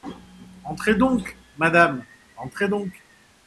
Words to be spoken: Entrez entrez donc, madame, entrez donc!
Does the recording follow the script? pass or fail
fail